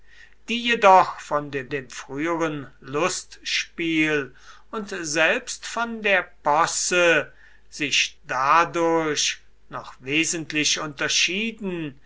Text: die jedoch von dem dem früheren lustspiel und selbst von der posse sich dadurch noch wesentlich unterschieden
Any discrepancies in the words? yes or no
no